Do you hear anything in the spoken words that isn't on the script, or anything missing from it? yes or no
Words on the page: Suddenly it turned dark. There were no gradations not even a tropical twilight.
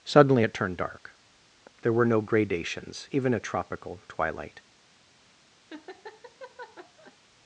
yes